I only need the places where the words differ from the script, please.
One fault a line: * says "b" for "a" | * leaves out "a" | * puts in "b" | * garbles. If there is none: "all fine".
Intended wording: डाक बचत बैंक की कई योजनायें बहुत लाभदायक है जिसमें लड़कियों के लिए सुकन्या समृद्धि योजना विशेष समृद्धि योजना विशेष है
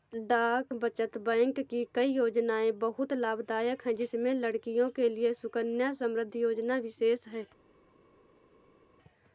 * leaves out "समृद्धि योजना विशेष"